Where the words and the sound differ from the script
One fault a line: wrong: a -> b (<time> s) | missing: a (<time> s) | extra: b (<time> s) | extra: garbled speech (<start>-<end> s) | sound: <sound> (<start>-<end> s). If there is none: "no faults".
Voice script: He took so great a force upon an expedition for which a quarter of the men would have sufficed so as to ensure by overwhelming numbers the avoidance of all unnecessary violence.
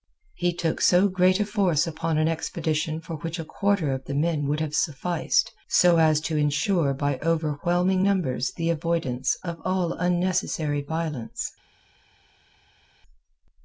no faults